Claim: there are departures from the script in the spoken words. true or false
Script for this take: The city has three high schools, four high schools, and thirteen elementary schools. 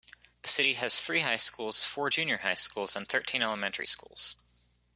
true